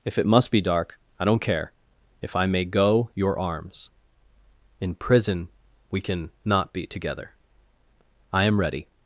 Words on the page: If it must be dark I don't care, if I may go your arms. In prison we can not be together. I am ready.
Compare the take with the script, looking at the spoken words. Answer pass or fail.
pass